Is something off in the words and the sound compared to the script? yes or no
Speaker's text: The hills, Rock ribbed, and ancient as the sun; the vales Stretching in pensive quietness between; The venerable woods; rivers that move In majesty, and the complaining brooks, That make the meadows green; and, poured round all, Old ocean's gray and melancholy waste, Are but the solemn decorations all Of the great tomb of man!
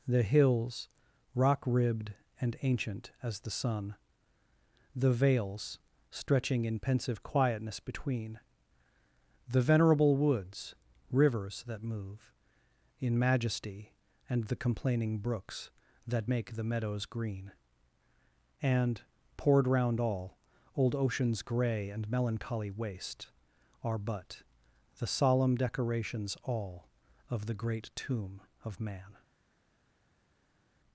no